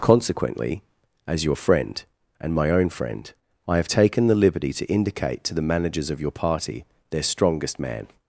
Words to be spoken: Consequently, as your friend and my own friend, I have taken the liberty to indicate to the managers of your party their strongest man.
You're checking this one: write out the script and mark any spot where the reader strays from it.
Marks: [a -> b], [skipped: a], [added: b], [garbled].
Consequently, as your friend and my own friend, I have taken the liberty to indicate to the managers of your party their strongest man.